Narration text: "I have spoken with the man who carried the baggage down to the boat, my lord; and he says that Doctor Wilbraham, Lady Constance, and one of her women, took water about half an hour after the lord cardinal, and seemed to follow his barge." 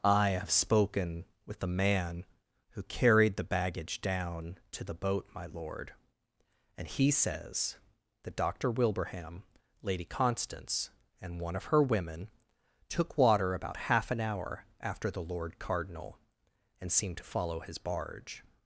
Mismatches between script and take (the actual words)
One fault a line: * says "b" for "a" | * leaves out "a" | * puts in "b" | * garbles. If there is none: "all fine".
all fine